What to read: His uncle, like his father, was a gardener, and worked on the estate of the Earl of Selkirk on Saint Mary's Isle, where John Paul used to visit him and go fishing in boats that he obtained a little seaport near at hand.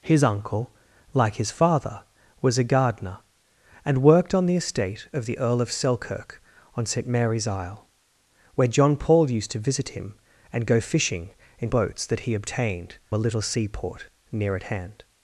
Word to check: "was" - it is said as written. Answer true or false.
true